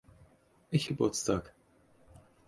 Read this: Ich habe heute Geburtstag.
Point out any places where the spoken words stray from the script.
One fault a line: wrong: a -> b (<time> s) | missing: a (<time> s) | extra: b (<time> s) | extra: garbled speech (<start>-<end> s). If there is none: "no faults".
missing: habe heute (0.9 s)